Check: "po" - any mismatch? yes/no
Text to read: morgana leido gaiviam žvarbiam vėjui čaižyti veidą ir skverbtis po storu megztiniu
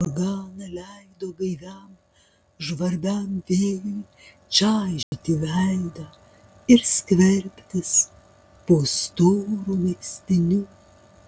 no